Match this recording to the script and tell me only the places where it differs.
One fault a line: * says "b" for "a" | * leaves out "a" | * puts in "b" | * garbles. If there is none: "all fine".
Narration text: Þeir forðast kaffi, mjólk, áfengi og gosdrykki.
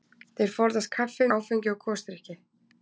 * leaves out "mjólk"